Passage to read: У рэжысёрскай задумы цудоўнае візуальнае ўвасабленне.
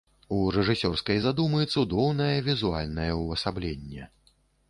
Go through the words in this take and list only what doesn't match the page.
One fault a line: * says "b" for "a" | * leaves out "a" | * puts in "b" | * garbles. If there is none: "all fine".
all fine